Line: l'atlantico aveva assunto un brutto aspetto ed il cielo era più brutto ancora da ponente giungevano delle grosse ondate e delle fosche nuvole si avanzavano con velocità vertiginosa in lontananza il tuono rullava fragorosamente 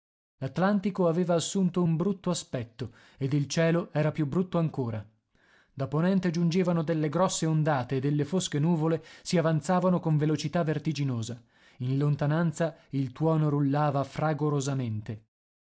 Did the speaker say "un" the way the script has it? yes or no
yes